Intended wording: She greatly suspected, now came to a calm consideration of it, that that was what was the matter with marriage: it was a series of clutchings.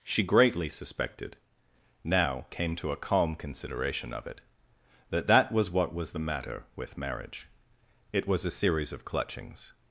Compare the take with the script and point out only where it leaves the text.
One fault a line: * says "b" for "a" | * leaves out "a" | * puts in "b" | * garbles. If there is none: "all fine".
all fine